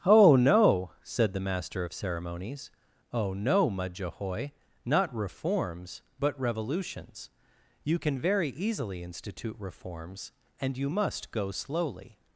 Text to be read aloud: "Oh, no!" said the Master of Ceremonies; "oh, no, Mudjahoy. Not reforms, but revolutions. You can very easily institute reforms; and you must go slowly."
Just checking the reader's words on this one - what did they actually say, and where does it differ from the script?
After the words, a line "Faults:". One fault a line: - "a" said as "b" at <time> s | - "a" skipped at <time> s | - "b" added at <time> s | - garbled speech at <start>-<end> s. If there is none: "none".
"Oh, no!" said the Master of Ceremonies; "oh, no, Mudjahoy. Not reforms, but revolutions. You can very easily institute reforms; and you must go slowly."
Faults:
none